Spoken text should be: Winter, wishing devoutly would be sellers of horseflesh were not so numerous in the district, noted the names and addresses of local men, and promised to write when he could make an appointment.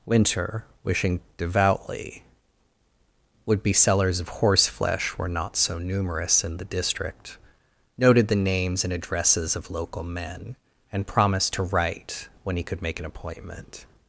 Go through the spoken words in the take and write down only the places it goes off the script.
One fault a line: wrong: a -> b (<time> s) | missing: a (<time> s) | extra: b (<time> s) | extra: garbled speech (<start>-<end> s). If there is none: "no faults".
no faults